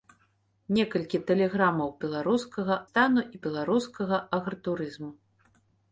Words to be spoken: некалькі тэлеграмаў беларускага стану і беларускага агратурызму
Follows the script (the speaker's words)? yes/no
yes